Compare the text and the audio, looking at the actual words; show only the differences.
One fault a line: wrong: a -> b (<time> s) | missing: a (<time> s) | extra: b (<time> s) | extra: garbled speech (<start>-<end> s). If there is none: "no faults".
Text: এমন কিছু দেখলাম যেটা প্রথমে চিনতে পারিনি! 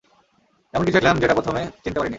no faults